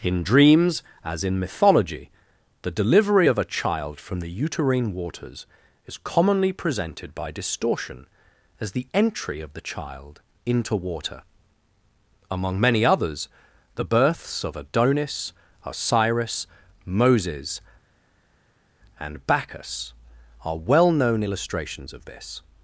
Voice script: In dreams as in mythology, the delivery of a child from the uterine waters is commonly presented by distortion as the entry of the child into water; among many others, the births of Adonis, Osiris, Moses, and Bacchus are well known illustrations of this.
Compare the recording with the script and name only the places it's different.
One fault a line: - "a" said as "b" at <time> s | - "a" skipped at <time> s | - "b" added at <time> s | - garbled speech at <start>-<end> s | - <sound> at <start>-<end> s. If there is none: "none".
none